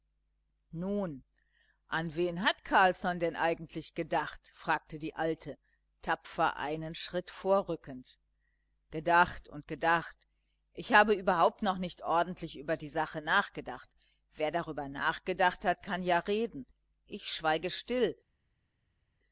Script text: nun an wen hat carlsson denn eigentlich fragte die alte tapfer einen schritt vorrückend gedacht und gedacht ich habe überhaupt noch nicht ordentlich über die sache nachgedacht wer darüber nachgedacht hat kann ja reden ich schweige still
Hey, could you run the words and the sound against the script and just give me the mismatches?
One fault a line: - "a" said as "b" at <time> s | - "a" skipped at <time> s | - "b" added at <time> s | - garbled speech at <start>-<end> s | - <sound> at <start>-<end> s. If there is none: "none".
- "gedacht" added at 3.9 s